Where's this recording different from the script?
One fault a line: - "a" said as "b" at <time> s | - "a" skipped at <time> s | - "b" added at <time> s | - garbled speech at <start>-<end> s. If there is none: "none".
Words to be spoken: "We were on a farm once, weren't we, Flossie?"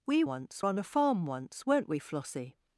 - "were" said as "once" at 0.2 s